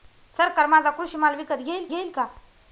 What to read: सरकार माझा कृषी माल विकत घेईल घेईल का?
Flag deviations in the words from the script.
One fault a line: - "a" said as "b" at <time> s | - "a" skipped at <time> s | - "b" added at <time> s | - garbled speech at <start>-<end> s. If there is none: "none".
none